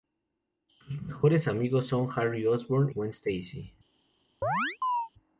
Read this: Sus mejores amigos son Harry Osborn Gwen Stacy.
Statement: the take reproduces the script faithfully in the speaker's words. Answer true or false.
true